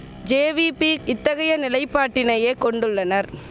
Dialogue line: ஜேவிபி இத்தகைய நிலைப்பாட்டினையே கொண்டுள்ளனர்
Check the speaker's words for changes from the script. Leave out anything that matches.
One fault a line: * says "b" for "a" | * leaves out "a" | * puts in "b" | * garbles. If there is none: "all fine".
all fine